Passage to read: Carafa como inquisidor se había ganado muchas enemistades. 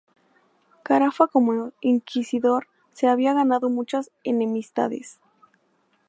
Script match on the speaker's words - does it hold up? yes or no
yes